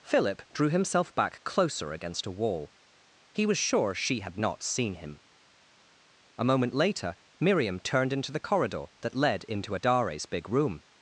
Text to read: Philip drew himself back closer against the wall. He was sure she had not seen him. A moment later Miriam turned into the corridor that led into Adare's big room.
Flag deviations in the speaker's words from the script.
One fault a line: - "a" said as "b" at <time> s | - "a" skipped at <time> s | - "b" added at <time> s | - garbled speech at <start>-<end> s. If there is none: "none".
- "the" said as "a" at 2.2 s